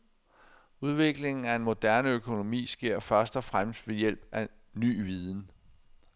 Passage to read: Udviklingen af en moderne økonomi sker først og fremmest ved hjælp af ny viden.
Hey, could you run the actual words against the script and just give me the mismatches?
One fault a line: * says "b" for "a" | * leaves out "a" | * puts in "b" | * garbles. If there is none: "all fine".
all fine